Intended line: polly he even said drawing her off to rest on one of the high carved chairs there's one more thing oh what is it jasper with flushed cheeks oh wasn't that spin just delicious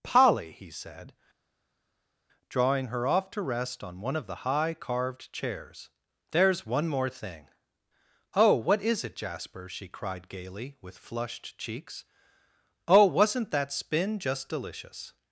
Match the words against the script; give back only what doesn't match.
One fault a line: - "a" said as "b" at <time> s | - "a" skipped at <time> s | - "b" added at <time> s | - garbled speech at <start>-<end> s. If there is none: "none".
- "even" skipped at 0.7 s
- "she cried gaily" added at 9.7 s